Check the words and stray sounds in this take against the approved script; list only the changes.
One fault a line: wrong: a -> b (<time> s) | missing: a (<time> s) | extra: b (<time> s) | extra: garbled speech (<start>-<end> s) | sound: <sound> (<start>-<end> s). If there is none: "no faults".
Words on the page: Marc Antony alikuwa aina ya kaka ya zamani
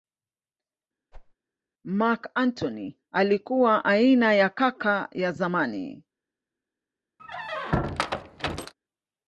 sound: whoosh (1.1-1.3 s)
sound: squeak (7.2-8.7 s)